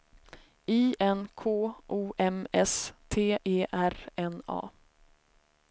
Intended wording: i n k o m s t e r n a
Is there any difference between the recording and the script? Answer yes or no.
no